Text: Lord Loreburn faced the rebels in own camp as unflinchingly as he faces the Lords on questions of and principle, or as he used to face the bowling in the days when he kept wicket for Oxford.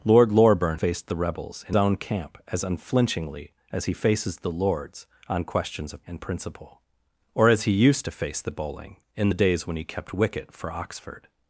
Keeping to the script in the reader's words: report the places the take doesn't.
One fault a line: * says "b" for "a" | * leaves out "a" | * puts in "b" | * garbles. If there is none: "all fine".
all fine